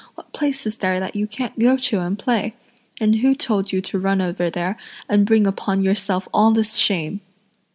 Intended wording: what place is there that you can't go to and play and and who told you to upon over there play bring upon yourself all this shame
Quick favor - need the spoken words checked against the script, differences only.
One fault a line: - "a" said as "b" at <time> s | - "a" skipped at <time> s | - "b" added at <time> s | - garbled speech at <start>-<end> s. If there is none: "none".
- "and" skipped at 3.2 s
- "upon" said as "run" at 4.0 s
- "play" said as "and" at 5.1 s